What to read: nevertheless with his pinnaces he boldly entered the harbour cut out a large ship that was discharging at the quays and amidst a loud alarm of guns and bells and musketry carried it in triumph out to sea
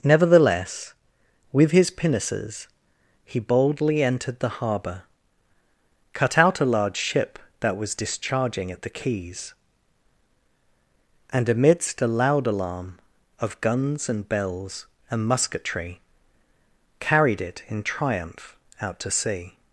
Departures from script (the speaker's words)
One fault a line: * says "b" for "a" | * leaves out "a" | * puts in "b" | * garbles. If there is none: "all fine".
all fine